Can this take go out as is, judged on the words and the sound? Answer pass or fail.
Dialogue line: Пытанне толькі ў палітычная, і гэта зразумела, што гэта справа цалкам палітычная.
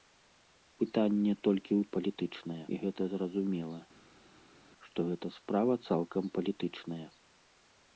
pass